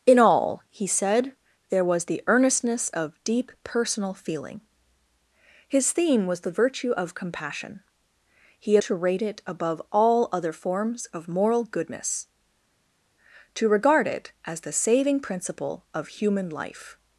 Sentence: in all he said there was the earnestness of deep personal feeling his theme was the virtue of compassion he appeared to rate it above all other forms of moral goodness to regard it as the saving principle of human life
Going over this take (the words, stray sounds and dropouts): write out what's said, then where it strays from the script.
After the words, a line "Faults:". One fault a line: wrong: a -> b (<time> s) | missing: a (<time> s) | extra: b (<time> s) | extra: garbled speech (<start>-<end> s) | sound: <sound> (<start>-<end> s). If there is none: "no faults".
in all he said there was the earnestness of deep personal feeling his theme was the virtue of compassion he to rate it above all other forms of moral goodness to regard it as the saving principle of human life
Faults:
missing: appeared (8.8 s)